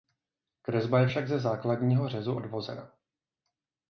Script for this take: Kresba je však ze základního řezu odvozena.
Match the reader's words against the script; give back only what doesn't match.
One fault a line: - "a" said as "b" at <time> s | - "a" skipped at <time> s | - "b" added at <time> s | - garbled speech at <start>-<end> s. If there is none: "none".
none